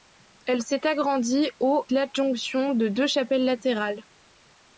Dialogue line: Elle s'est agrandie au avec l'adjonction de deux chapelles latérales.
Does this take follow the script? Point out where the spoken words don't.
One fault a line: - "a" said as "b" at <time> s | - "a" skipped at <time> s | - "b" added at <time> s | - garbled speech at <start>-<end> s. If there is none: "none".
- "avec" skipped at 1.9 s